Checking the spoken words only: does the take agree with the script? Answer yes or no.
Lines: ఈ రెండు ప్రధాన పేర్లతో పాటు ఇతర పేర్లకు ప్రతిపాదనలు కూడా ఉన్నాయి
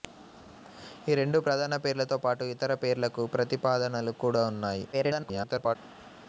no